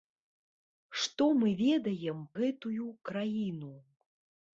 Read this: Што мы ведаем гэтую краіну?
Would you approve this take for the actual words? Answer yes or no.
yes